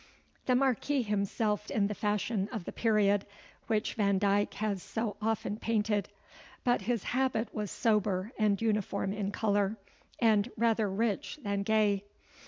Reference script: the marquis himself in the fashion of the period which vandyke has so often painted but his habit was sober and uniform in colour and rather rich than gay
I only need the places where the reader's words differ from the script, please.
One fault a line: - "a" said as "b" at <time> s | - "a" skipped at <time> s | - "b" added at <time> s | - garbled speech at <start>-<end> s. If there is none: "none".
none